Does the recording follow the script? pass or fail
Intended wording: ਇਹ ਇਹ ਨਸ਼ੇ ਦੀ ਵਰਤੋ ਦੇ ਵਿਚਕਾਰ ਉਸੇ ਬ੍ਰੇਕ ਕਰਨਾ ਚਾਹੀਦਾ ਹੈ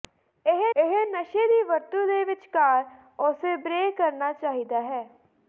pass